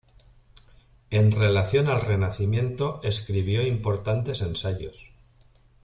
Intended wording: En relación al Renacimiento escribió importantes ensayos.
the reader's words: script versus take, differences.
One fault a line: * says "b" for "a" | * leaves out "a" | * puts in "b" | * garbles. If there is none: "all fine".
all fine